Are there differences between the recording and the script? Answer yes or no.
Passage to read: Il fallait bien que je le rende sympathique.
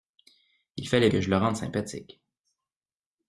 yes